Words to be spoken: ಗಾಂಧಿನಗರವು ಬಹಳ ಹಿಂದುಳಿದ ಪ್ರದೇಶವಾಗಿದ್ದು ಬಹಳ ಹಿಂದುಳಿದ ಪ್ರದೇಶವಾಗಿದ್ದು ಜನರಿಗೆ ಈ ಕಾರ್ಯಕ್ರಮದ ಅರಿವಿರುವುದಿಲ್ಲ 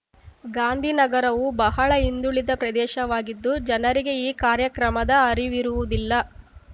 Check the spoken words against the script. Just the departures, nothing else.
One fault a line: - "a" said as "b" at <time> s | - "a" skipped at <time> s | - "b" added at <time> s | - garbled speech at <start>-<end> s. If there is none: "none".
- "ಬಹಳ ಹಿಂದುಳಿದ ಪ್ರದೇಶವಾಗಿದ್ದು" skipped at 3.5 s